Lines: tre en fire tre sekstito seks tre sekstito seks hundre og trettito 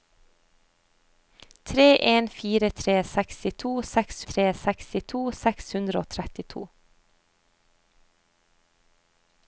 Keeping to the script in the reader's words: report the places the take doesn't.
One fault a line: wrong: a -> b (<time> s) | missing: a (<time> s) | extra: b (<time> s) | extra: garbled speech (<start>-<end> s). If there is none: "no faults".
no faults